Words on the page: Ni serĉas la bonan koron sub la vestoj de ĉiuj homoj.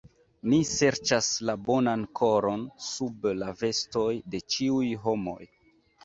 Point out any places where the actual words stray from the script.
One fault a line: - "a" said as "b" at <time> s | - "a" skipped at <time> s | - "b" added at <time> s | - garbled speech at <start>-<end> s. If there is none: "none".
none